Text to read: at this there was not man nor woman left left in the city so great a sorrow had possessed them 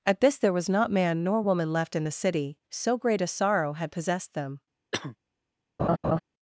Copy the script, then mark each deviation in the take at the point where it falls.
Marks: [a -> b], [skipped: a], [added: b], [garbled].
at this there was not man nor woman left [skipped: left] in the city so great a sorrow had possessed them